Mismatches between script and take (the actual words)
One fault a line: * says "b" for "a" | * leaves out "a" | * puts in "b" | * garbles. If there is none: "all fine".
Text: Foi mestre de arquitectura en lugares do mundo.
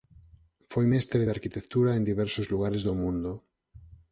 * puts in "diversos"